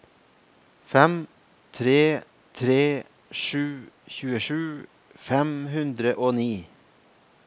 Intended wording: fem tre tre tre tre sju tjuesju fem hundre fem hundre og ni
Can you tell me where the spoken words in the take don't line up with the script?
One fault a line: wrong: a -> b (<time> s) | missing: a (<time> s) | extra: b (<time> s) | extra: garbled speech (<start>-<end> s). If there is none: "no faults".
missing: tre tre (2.8 s)
missing: fem hundre (6.1 s)